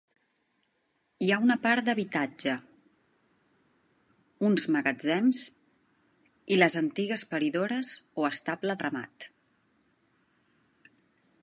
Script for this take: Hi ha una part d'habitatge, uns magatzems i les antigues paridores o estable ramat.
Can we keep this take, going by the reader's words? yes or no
yes